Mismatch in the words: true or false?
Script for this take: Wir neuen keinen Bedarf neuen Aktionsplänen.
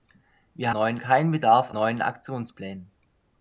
false